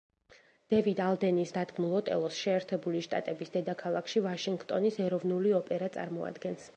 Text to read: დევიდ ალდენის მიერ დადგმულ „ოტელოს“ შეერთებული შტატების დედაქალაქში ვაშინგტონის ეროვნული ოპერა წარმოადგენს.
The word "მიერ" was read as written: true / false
false